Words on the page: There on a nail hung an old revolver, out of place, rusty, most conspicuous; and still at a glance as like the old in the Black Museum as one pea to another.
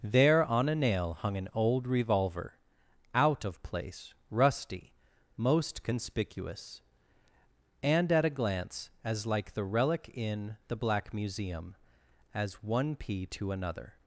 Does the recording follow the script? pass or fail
fail